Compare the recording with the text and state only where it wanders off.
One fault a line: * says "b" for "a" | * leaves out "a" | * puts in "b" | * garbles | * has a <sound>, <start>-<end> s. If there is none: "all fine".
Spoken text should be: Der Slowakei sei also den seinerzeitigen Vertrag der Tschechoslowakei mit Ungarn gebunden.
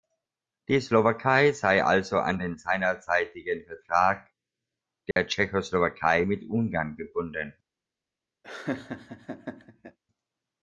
* says "Die" for "Der"
* puts in "an"
* has a dropout, 5.1-5.2 s
* has a laugh, 8.4-10.0 s